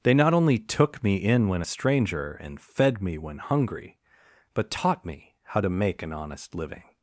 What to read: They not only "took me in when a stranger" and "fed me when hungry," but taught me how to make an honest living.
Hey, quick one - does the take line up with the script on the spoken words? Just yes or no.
yes